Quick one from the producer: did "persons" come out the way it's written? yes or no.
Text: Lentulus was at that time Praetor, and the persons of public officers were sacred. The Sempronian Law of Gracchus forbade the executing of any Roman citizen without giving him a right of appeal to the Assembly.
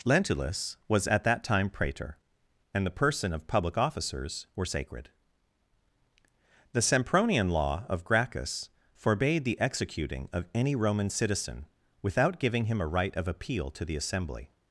no